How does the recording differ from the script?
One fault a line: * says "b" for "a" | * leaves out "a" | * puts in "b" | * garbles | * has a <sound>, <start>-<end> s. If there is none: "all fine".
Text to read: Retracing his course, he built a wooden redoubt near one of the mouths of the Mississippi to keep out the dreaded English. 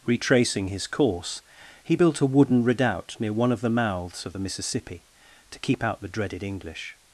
all fine